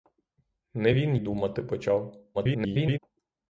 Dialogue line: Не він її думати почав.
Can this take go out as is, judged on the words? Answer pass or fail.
fail